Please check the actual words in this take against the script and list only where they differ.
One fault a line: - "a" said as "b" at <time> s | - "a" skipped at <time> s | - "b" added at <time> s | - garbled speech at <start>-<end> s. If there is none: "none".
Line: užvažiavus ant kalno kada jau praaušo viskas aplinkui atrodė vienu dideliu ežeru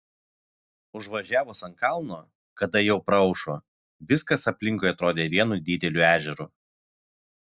none